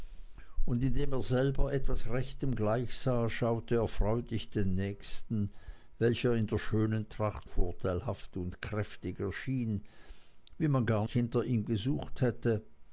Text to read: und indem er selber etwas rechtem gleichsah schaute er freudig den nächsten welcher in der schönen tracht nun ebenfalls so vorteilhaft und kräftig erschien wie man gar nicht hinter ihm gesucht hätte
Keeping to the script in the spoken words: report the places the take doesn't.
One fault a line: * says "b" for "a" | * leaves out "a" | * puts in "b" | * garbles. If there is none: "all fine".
* leaves out "nun ebenfalls so"
* leaves out "nicht"